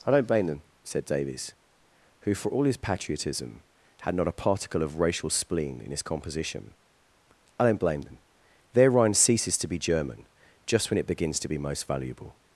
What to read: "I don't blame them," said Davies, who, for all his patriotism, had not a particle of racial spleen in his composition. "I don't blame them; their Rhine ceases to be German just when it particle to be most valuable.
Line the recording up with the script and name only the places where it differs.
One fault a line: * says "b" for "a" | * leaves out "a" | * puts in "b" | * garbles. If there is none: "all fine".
* says "begins" for "particle"